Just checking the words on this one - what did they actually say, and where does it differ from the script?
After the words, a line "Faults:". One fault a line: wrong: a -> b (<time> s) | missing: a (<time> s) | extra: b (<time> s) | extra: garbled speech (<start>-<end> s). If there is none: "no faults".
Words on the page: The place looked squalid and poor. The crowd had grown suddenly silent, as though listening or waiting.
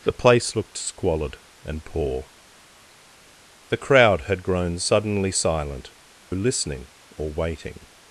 The place looked squalid and poor. The crowd had grown suddenly silent, listening or waiting.
Faults:
missing: as though (5.9 s)